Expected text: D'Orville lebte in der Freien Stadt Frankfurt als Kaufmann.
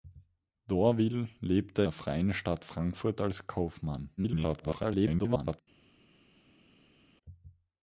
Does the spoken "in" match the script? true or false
false